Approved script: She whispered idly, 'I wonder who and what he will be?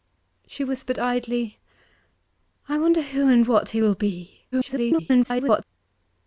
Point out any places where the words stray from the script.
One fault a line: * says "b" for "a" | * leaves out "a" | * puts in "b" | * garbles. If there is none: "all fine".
* garbles